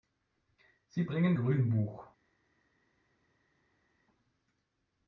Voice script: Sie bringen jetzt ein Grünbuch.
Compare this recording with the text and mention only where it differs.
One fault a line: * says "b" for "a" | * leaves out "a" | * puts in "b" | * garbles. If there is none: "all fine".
* leaves out "jetzt ein"